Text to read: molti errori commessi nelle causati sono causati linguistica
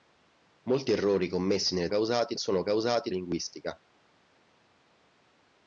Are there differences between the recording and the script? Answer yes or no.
no